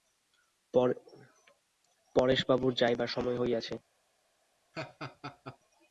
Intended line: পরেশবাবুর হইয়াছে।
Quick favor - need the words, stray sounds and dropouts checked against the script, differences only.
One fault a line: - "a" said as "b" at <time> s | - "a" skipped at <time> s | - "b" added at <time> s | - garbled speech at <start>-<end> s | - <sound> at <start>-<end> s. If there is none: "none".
- "যাইবার সময়" added at 2.7 s
- laugh at 4.7-5.6 s